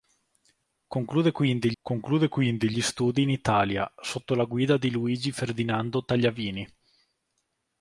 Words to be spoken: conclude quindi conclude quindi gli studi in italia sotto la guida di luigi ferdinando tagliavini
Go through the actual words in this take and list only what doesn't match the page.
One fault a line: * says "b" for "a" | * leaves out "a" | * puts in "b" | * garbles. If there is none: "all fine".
all fine